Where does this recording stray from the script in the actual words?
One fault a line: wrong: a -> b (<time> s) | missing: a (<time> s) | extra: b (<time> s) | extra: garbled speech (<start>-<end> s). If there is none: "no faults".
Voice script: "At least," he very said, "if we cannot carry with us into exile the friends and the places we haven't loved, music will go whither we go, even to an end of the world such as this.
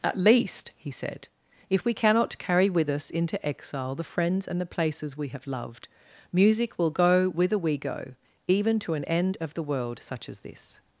missing: very (0.9 s)
wrong: haven't -> have (5.3 s)